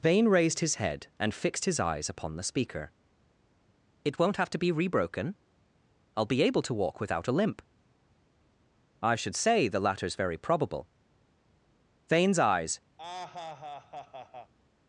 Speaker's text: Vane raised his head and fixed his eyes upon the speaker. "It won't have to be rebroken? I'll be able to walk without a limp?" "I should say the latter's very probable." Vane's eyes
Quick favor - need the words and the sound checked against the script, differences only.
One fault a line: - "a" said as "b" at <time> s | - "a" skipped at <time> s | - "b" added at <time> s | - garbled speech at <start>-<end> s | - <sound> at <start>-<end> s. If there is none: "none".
- laugh at 13.0-14.5 s